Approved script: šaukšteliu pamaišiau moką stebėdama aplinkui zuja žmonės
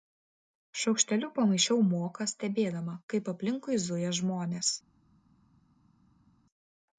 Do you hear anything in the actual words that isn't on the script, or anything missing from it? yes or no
yes